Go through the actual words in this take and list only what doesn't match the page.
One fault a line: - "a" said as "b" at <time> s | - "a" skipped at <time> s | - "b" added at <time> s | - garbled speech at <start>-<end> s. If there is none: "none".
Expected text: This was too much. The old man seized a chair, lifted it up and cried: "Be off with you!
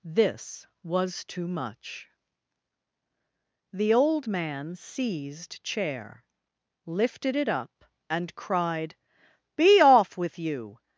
- "a" skipped at 5.6 s